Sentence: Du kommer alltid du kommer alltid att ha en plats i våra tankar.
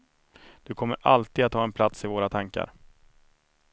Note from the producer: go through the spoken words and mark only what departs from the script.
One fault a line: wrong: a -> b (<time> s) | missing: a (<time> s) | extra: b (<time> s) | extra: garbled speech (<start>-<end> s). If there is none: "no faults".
missing: du kommer alltid (1.4 s)